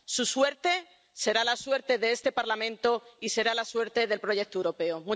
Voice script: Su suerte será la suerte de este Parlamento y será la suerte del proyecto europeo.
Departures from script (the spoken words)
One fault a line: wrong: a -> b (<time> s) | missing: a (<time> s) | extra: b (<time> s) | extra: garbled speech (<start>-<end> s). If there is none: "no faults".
no faults